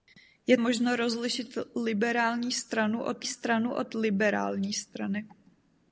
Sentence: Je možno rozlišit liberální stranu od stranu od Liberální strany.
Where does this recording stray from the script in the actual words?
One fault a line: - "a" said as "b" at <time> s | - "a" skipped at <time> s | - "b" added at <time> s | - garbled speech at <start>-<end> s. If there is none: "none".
none